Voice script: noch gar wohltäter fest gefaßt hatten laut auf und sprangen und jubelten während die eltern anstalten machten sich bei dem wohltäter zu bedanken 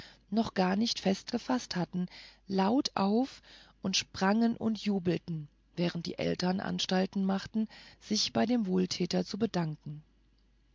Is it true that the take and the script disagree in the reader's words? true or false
true